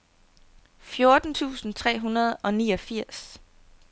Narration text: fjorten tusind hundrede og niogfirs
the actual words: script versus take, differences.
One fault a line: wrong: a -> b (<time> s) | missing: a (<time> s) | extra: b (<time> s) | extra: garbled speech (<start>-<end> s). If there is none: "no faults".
extra: tre (1.7 s)